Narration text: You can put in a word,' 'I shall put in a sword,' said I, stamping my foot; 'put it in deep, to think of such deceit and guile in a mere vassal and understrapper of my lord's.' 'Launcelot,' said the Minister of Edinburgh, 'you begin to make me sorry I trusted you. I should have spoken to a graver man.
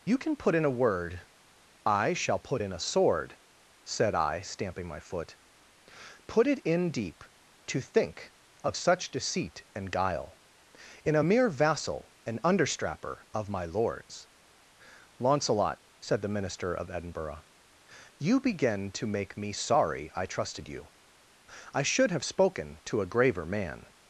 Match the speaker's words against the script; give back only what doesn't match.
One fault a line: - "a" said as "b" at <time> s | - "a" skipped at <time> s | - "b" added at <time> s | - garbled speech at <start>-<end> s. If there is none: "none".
none